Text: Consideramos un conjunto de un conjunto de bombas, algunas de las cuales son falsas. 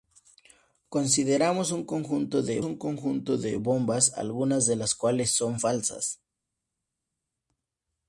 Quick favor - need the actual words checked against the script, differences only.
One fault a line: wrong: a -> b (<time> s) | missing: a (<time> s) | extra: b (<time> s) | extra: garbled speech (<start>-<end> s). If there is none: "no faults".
no faults